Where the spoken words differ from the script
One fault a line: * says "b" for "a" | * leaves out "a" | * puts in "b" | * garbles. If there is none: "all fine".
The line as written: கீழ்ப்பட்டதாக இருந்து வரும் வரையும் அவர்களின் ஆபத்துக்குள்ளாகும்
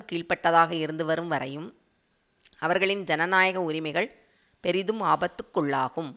* puts in "ஜனநாயக உரிமைகள் பெரிதும்"